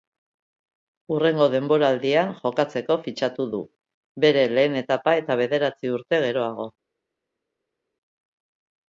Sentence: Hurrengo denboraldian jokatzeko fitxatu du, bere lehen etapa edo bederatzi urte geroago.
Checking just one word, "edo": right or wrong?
wrong